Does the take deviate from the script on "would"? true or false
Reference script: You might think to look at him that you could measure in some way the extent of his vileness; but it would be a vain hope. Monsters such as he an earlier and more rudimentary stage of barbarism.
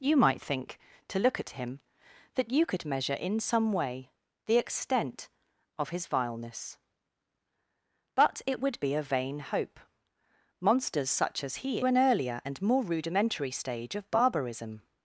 false